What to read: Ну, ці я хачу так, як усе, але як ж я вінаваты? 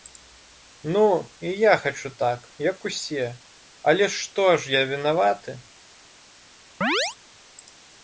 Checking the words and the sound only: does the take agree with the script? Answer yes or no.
no